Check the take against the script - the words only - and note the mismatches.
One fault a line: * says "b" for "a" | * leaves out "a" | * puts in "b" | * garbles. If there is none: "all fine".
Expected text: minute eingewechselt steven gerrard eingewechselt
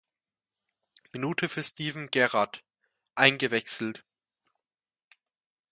* says "für" for "eingewechselt"